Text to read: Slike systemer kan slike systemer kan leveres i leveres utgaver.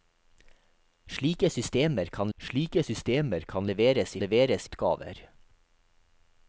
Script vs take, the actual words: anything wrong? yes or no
no